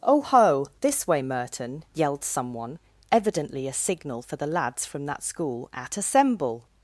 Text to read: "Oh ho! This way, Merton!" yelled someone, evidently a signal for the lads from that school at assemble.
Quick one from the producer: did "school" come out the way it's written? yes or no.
yes